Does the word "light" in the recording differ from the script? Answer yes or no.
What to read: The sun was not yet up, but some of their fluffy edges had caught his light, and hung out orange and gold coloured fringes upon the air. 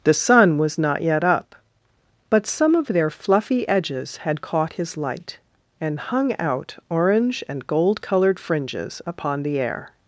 no